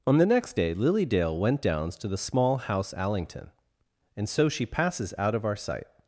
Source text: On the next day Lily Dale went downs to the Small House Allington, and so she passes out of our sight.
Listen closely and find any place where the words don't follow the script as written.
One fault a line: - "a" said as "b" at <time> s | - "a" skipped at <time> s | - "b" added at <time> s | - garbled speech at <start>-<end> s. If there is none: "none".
none